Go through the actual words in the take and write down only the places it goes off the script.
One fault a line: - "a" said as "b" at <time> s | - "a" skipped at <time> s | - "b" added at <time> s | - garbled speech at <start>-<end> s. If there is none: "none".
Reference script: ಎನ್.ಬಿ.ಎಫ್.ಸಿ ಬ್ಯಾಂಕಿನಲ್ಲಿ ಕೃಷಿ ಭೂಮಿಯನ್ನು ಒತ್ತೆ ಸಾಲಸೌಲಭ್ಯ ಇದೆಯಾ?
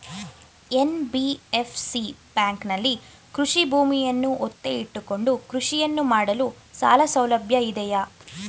- "ಇಟ್ಟುಕೊಂಡು ಕೃಷಿಯನ್ನು ಮಾಡಲು" added at 4.8 s